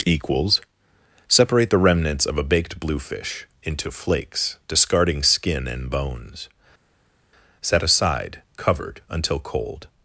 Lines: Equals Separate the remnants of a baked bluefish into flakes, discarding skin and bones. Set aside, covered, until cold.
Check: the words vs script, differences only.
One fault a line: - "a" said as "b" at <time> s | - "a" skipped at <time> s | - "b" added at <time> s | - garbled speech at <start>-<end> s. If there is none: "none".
none